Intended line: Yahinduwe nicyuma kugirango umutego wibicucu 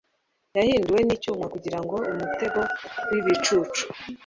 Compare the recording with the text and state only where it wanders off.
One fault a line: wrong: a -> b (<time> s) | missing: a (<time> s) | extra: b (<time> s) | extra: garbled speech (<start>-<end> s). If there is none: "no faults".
no faults